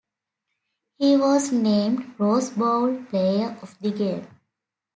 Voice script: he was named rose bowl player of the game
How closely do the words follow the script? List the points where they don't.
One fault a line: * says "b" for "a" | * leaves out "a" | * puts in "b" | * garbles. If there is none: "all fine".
all fine